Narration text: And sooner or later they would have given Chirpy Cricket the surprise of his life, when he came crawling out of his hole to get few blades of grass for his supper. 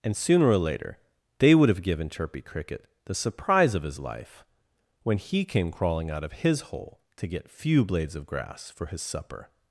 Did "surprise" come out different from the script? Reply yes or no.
no